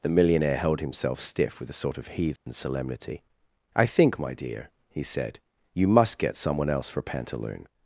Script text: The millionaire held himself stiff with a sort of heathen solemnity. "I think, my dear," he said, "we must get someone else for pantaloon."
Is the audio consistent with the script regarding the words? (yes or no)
no